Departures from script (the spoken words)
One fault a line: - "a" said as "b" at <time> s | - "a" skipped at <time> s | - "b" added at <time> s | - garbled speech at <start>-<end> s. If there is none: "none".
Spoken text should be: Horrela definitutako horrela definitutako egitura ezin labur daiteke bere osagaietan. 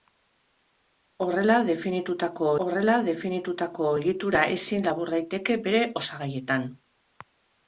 none